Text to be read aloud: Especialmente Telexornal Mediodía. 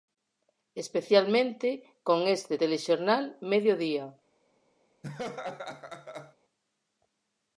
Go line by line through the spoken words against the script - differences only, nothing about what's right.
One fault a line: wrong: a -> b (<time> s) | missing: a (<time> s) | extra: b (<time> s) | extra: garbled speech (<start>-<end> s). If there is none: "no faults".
extra: con este (2.0 s)